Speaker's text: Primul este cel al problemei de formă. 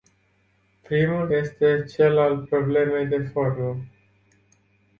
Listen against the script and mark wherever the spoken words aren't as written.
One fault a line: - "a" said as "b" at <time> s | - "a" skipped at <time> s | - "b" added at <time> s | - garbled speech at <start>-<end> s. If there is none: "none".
none